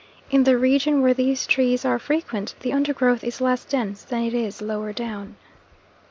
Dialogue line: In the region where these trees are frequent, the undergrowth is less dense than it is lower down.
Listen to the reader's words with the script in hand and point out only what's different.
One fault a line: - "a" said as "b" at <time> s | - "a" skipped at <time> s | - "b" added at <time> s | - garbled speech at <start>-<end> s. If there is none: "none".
none